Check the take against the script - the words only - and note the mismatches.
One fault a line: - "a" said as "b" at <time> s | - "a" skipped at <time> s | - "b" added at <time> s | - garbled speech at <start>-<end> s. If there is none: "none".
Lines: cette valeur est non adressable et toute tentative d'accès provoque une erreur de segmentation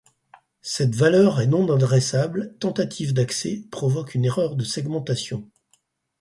- "et toute" skipped at 2.6 s